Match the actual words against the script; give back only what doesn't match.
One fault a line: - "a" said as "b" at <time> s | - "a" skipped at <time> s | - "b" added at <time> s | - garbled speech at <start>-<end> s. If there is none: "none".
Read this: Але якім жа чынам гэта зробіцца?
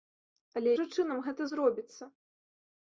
- "якім" skipped at 0.7 s